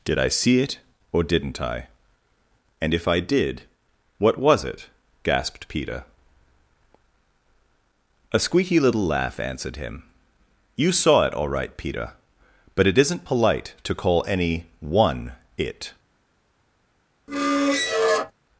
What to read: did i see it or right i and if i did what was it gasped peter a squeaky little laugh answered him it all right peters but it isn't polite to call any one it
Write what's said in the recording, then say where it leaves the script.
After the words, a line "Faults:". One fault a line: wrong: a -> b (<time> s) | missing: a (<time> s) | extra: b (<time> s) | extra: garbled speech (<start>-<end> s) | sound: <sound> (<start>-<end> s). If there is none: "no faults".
did i see it or didn't i and if i did what was it gasped peter a squeaky little laugh answered him you saw it all right peter but it isn't polite to call any one it
Faults:
wrong: right -> didn't (1.2 s)
extra: you saw (10.8 s)
wrong: peters -> peter (11.8 s)
sound: squeak (17.3-18.3 s)